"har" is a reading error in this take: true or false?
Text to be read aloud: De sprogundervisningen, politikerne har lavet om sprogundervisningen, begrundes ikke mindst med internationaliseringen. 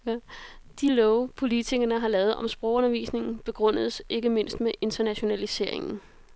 false